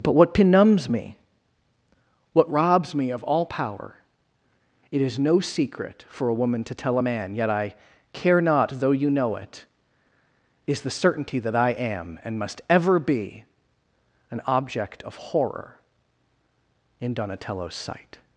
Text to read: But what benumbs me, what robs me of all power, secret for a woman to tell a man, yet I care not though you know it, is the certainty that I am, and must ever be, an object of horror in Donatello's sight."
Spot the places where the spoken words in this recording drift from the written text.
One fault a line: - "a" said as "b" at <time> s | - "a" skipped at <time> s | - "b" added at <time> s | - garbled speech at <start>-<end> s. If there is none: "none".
- "it is no" added at 4.9 s